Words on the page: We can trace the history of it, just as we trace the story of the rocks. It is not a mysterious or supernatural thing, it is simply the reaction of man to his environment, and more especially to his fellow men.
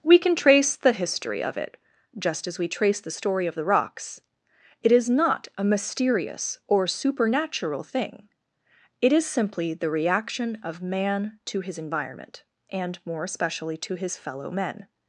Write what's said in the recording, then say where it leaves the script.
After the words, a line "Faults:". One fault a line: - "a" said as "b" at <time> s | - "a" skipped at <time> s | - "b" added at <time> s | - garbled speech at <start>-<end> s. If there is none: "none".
We can trace the history of it, just as we trace the story of the rocks. It is not a mysterious or supernatural thing, it is simply the reaction of man to his environment, and more especially to his fellow men.
Faults:
none